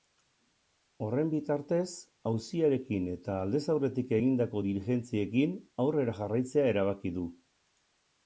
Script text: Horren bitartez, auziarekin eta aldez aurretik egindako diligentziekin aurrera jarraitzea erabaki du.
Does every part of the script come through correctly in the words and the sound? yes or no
yes